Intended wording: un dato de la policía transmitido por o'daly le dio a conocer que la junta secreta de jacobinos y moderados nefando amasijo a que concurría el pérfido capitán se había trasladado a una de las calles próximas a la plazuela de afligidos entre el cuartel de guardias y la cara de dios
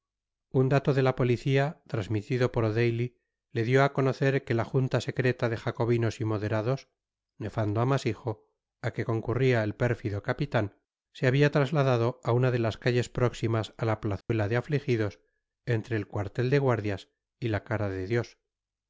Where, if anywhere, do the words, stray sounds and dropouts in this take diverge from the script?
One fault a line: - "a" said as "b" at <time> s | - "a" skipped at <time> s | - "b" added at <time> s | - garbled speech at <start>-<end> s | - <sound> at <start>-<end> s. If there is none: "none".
- dropout at 14.2-14.3 s